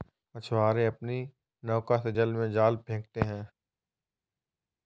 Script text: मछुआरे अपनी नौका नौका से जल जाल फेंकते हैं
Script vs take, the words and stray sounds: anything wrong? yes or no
yes